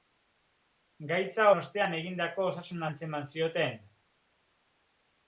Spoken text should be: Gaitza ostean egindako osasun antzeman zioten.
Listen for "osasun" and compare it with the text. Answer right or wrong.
right